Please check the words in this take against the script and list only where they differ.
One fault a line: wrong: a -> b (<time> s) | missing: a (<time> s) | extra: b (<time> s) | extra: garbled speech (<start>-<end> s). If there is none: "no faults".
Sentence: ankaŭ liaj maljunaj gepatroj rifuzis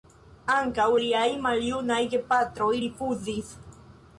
no faults